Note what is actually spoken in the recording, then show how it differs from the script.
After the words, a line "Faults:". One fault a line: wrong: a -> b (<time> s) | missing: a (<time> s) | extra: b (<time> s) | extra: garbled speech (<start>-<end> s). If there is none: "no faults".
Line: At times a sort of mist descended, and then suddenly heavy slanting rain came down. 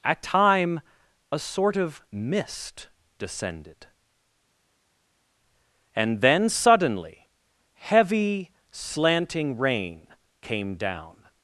At time a sort of mist descended, and then suddenly heavy slanting rain came down.
Faults:
wrong: times -> time (0.2 s)